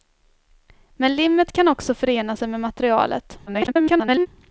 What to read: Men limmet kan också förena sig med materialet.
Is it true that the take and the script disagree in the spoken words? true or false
true